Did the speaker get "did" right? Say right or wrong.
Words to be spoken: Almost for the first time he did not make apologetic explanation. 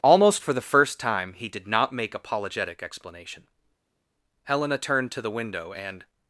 right